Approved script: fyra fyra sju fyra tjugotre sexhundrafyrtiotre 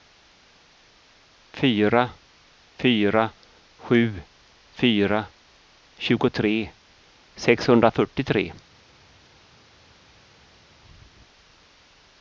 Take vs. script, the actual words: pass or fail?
pass